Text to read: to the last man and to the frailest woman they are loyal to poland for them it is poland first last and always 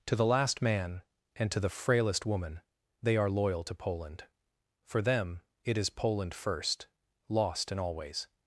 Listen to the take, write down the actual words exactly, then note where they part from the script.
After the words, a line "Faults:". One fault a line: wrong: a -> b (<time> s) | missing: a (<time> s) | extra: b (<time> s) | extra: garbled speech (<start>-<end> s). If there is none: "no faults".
to the last man and to the frailest woman they are loyal to poland for them it is poland first lost and always
Faults:
wrong: last -> lost (7.3 s)